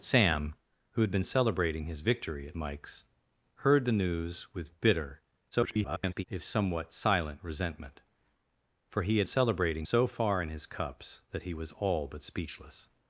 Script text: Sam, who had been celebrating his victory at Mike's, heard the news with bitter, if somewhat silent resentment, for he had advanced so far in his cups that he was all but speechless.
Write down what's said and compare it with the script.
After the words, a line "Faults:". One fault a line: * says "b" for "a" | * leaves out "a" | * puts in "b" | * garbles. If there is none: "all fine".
Sam, who had been celebrating his victory at Mike's, heard the news with bitter, [garbled] if somewhat silent resentment, for he had celebrating so far in his cups that he was all but speechless.
Faults:
* garbles
* says "celebrating" for "advanced"